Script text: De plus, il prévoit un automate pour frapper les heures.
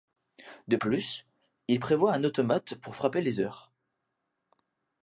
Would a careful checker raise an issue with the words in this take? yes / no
no